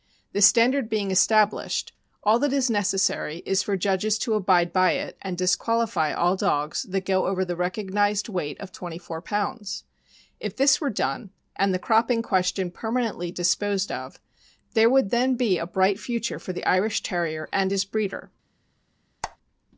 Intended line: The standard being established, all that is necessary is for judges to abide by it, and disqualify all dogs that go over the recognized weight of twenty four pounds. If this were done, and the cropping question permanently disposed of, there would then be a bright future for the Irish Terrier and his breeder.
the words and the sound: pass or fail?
fail